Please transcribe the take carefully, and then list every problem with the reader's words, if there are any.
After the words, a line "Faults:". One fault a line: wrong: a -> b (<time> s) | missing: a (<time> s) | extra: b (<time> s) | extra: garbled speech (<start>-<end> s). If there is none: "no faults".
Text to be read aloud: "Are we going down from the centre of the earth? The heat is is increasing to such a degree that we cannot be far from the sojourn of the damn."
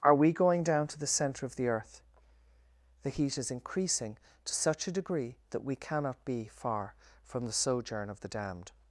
"Are we going down to the centre of the earth? The heat is increasing to such a degree that we cannot be far from the sojourn of the damned."
Faults:
wrong: from -> to (0.9 s)
missing: is (3.5 s)
wrong: damn -> damned (8.3 s)